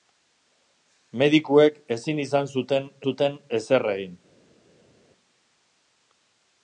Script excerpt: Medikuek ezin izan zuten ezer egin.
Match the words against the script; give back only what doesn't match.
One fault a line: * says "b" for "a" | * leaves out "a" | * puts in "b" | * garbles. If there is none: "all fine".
* puts in "zuten"